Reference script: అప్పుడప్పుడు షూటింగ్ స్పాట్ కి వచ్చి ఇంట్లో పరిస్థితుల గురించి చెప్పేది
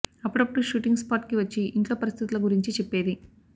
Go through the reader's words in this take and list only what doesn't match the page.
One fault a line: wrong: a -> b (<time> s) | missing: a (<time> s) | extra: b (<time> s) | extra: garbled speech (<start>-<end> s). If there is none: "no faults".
no faults